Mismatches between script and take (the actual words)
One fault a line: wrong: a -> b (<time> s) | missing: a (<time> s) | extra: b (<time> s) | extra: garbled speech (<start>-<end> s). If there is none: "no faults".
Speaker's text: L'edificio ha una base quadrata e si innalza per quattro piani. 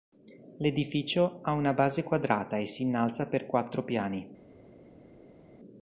no faults